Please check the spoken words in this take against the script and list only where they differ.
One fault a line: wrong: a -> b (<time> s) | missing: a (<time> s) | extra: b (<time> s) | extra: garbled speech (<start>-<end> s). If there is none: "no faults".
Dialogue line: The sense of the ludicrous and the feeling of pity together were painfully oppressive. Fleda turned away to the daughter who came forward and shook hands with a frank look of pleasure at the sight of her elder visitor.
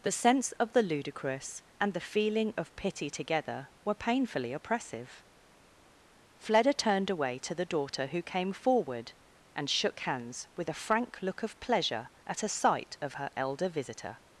wrong: the -> a (12.4 s)